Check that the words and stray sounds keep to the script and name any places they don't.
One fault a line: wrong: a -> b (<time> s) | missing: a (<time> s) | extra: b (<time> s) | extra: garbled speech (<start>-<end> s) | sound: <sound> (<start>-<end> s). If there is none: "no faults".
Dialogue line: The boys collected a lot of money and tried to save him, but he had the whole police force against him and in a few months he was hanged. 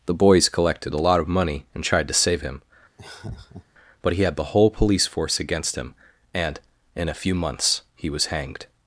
sound: laugh (3.0-3.7 s)